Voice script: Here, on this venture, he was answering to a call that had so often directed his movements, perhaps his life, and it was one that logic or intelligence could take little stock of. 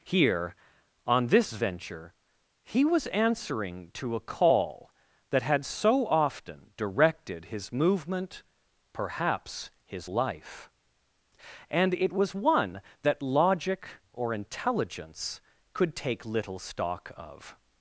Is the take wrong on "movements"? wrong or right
wrong